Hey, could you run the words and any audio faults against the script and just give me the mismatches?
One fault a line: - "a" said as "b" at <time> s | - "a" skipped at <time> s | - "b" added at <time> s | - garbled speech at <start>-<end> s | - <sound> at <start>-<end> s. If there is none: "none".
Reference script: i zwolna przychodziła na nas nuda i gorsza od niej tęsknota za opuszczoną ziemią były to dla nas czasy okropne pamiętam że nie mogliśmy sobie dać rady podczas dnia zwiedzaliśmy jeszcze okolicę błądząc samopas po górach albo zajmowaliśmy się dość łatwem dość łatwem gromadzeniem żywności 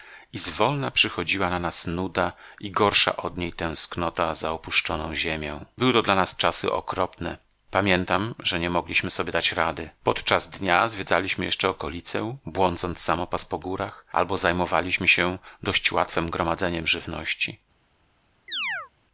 - "dość łatwem" skipped at 16.3 s
- chirp at 18.5-18.9 s